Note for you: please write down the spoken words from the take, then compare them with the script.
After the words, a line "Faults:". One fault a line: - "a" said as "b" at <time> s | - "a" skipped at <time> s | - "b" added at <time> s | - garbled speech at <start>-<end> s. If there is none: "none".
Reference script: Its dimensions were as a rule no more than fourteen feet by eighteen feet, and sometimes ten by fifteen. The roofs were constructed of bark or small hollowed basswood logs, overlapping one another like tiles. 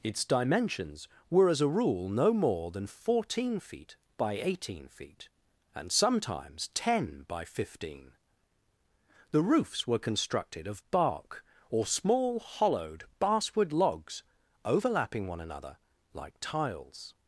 Its dimensions were as a rule no more than fourteen feet by eighteen feet, and sometimes ten by fifteen. The roofs were constructed of bark or small hollowed basswood logs, overlapping one another like tiles.
Faults:
none